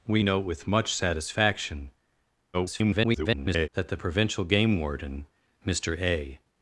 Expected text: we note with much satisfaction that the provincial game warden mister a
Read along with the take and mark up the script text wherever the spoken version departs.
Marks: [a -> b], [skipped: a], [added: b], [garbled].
we note with much satisfaction [garbled] that the provincial game warden mister a